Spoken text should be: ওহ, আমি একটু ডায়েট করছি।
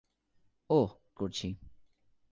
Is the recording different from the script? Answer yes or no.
yes